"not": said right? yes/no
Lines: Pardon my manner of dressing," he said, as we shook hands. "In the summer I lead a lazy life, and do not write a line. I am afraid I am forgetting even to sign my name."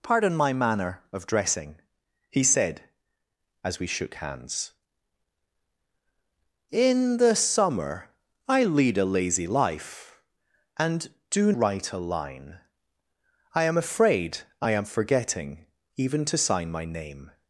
no